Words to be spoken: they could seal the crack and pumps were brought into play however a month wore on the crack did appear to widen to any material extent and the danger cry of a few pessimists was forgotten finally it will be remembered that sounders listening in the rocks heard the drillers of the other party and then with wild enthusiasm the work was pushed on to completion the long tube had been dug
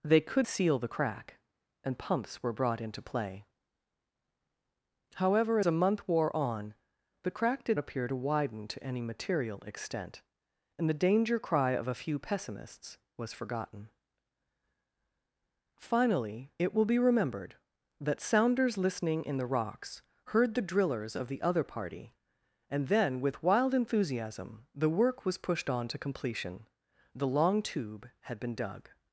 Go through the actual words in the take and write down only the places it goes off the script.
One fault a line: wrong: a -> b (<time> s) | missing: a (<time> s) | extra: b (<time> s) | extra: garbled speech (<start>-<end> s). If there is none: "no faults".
no faults